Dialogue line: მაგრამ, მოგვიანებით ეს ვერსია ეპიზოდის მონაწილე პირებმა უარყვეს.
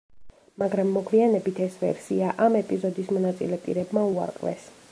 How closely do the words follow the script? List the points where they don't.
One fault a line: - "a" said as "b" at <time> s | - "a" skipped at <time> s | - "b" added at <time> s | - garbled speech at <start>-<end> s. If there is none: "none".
- "ამ" added at 2.5 s